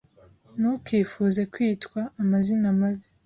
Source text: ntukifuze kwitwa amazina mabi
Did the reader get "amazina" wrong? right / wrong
right